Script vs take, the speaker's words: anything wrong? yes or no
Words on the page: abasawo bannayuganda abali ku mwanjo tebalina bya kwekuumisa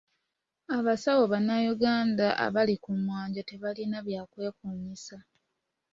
no